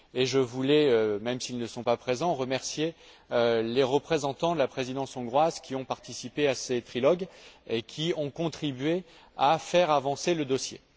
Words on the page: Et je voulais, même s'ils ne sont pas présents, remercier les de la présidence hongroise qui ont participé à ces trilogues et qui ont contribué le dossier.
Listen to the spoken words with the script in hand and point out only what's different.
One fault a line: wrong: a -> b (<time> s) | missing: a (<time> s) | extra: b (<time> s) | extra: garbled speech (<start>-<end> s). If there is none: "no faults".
extra: représentants (3.8 s)
extra: à faire avancer (9.4 s)